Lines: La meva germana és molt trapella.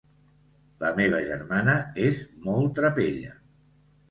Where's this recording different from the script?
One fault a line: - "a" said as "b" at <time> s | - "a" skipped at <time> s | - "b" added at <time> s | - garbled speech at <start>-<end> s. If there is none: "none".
none